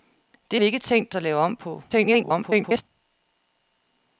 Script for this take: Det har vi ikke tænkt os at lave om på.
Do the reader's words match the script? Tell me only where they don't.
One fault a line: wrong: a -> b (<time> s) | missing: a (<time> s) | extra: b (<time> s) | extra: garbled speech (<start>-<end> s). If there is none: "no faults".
missing: har (0.6 s)
missing: os (1.1 s)
extra: garbled speech (1.9-2.8 s)